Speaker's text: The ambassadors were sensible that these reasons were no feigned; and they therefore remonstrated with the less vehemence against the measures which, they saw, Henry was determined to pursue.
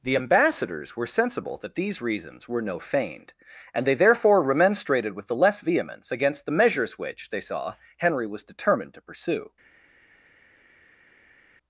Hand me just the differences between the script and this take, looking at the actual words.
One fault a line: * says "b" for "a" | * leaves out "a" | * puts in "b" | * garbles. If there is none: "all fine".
all fine